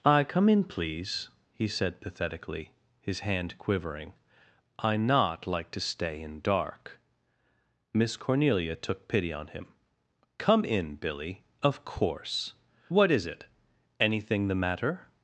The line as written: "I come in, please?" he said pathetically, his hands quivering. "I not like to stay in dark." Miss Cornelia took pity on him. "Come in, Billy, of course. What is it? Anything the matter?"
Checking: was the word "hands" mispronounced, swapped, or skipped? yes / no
yes